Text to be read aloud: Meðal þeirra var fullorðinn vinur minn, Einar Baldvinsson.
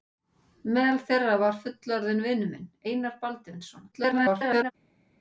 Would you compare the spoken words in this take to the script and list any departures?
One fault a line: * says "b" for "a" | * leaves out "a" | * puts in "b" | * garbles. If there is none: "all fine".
* garbles